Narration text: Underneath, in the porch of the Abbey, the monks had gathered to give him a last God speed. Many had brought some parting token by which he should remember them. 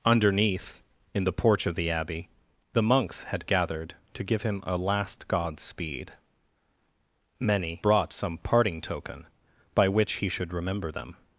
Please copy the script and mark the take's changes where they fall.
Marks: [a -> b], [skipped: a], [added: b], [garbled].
Underneath, in the porch of the Abbey, the monks had gathered to give him a last God speed. Many [skipped: had] brought some parting token by which he should remember them.